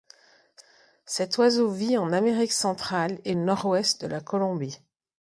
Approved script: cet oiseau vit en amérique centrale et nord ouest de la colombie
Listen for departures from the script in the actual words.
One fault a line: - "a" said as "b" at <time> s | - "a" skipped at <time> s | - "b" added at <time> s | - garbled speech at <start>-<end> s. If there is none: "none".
none